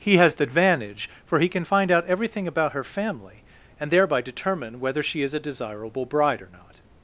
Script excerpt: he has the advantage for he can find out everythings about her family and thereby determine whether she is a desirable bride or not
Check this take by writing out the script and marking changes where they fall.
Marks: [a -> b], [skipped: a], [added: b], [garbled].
he has the advantage for he can find out [everythings -> everything] about her family and thereby determine whether she is a desirable bride or not